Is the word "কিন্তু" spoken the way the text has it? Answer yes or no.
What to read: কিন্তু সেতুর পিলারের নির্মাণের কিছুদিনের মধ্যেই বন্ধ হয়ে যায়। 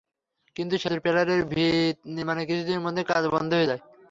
yes